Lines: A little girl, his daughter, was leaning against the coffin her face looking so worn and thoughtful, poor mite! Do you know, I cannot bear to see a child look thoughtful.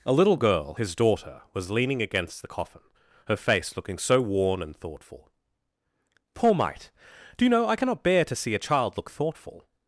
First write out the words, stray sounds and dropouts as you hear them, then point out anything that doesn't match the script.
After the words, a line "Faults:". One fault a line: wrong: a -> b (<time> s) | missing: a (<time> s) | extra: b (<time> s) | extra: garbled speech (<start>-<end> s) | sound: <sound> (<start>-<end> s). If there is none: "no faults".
A little girl, his daughter, was leaning against the coffin her face looking so worn and thoughtful, poor mite! Do you know, I cannot bear to see a child look thoughtful.
Faults:
no faults